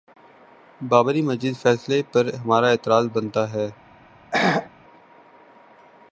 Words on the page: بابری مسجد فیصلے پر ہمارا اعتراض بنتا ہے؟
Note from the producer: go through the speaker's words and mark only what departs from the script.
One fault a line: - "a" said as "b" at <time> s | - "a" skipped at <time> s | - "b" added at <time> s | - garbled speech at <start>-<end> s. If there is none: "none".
none